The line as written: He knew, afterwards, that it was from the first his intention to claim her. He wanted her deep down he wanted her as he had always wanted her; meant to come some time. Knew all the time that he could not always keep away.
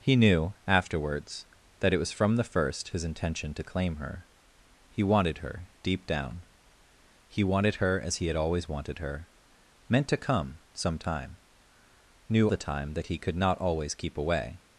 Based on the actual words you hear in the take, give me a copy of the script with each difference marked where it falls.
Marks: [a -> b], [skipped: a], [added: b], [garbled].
He knew, afterwards, that it was from the first his intention to claim her. He wanted her deep down he wanted her as he had always wanted her; meant to come some time. Knew [skipped: all] the time that he could not always keep away.